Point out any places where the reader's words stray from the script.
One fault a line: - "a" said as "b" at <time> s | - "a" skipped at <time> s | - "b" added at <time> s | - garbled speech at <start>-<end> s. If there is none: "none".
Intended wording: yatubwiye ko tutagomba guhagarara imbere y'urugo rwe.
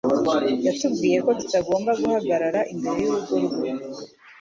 none